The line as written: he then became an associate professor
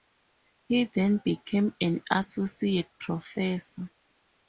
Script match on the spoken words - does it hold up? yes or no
yes